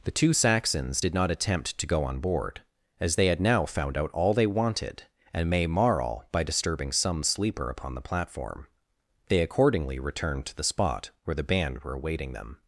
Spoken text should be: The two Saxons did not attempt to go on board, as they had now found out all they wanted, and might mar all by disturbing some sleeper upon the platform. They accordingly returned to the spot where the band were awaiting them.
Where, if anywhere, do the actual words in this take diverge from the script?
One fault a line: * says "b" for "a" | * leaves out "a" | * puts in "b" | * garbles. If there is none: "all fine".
* says "may" for "might"